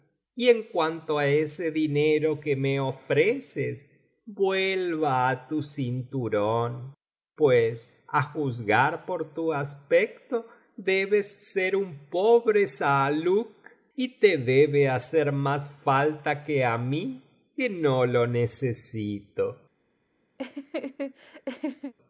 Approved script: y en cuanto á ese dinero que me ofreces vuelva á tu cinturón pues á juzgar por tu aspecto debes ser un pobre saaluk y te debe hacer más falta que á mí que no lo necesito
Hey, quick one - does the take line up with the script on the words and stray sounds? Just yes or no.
no